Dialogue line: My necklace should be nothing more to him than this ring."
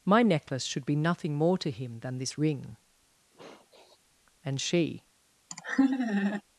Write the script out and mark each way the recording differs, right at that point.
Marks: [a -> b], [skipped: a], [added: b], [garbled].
My necklace should be nothing more to him than this ring." [added: And she]